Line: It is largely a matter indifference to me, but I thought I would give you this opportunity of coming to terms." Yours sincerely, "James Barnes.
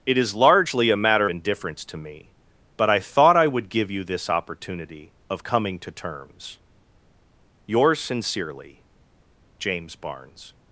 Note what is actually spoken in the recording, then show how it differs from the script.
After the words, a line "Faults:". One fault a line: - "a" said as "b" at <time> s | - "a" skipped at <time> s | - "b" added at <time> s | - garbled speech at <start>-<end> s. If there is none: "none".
It is largely a matter indifference to me, but I thought I would give you this opportunity of coming to terms." Yours sincerely, "James Barnes.
Faults:
none